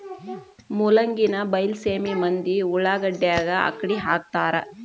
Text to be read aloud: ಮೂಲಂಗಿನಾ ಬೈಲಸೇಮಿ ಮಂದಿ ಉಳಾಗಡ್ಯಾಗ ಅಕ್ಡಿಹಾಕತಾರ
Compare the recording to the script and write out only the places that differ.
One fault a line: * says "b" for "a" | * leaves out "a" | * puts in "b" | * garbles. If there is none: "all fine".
all fine